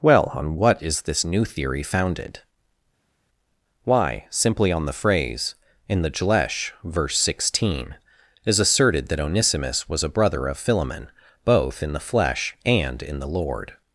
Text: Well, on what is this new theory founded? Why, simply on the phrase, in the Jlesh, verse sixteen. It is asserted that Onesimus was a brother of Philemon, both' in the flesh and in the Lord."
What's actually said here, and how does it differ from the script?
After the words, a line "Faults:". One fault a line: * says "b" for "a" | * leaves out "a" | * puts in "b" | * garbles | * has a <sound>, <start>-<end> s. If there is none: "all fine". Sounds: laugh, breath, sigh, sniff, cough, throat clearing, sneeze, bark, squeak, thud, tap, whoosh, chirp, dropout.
Well, on what is this new theory founded? Why, simply on the phrase, in the Jlesh, verse sixteen. is asserted that Onesimus was a brother of Philemon, both' in the flesh and in the Lord."
Faults:
* leaves out "It"